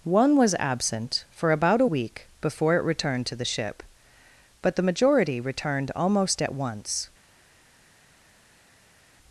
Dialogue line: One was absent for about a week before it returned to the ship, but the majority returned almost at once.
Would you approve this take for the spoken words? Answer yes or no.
yes